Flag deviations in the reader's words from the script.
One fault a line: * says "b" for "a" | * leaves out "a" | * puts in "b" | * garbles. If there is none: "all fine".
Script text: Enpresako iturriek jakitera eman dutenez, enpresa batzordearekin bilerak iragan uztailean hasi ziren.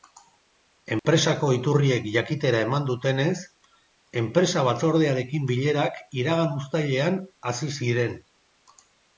all fine